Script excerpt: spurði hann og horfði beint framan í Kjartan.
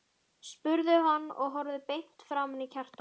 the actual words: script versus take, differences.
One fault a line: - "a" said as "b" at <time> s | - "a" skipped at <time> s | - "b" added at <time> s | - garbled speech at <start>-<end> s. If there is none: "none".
none